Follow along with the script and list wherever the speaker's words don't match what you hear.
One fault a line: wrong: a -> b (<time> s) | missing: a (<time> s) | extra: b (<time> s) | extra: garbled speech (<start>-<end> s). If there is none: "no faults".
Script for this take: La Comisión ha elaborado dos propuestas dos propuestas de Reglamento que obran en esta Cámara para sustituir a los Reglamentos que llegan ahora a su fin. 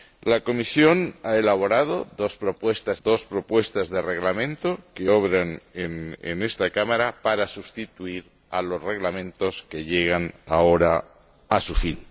no faults